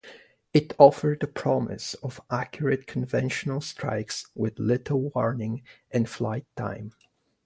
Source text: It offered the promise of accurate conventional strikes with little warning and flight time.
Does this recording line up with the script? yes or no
yes